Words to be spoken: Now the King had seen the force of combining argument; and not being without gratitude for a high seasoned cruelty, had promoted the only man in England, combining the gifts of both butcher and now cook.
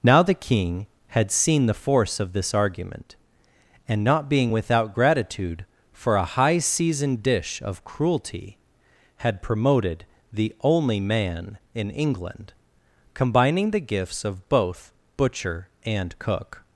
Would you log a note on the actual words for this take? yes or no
yes